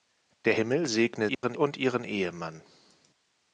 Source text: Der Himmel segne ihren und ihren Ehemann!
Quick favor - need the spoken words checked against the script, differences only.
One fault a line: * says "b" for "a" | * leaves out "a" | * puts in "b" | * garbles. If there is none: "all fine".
all fine